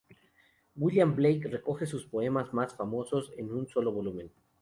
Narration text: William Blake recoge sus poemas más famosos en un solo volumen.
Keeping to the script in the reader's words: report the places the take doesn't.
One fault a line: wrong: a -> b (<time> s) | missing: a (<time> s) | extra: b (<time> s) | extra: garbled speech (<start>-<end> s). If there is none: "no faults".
no faults